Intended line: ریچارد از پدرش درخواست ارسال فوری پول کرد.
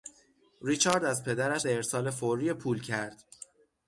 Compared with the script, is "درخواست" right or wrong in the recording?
wrong